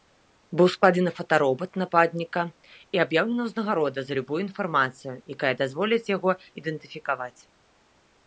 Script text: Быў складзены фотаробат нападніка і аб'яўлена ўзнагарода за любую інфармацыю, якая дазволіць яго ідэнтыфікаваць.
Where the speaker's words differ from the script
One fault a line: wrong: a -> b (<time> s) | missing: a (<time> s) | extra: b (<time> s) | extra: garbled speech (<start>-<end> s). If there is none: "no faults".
no faults